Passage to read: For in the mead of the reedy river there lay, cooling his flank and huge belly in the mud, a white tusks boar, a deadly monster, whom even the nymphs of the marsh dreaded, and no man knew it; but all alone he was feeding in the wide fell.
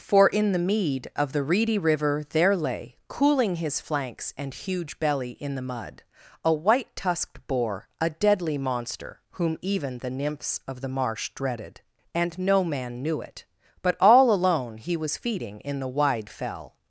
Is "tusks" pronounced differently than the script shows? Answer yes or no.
yes